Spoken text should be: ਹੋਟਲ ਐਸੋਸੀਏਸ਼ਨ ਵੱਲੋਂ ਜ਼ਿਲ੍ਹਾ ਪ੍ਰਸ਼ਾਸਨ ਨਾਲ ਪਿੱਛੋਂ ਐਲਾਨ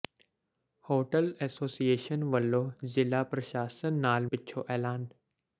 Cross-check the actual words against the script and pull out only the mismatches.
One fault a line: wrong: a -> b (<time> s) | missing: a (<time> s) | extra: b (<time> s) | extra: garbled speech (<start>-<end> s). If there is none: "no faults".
no faults